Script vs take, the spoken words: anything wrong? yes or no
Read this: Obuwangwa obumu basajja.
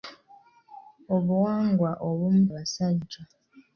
no